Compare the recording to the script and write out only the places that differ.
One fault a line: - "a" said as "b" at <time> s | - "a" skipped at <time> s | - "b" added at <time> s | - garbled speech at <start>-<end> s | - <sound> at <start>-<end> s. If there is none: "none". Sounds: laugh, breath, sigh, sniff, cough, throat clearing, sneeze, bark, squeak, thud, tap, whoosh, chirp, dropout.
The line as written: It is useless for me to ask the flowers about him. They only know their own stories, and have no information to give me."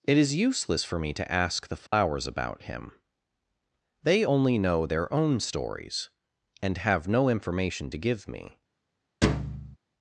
- dropout at 1.9-1.9 s
- thud at 9.2-9.8 s